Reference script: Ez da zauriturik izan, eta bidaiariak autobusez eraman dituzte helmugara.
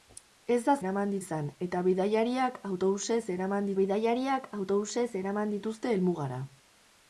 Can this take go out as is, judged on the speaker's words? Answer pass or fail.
fail